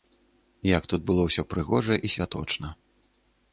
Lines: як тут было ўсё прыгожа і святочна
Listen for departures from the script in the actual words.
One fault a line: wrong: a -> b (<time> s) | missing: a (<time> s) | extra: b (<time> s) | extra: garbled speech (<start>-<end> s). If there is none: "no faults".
no faults